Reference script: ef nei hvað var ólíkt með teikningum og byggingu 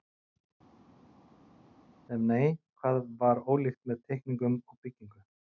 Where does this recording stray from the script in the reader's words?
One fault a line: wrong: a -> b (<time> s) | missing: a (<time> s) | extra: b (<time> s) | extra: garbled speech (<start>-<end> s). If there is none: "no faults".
no faults